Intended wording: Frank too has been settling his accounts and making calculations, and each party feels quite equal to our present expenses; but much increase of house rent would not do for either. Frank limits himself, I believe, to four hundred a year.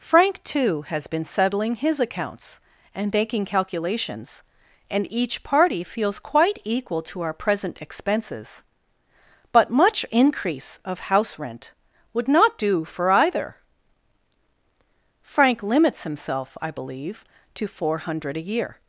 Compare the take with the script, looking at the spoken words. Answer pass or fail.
pass